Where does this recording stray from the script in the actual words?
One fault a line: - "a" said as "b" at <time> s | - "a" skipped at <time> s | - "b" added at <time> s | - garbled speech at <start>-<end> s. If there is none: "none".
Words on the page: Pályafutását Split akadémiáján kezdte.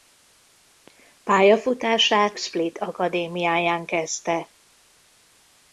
none